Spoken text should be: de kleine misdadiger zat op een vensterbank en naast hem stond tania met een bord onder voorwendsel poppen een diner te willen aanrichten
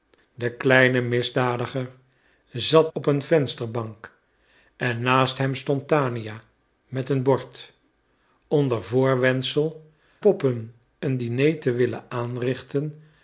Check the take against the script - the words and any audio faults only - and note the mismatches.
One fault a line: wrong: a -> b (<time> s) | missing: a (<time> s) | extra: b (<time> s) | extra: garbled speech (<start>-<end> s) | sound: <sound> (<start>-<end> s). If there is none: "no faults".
no faults